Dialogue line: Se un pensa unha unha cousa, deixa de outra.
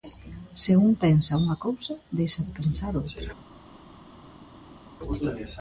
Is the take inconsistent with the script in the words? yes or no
yes